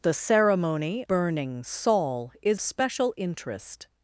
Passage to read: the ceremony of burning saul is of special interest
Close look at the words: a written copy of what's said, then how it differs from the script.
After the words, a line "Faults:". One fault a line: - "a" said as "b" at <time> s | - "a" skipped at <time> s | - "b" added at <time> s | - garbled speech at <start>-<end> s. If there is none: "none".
the ceremony burning saul is special interest
Faults:
- "of" skipped at 1.1 s
- "of" skipped at 2.6 s